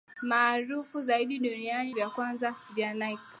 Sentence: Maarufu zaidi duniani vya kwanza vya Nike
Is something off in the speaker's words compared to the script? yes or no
no